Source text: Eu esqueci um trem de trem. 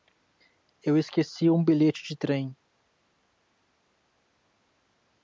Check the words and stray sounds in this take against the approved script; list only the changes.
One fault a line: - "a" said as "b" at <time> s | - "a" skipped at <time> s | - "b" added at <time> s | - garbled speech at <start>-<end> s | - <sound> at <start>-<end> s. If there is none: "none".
- "trem" said as "bilhete" at 1.6 s